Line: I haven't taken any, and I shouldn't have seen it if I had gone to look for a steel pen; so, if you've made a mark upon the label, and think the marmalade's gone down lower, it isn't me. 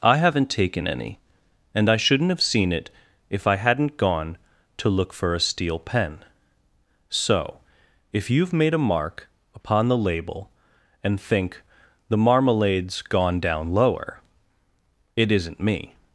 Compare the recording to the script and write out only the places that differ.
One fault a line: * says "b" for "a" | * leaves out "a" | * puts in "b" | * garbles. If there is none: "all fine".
* says "hadn't" for "had"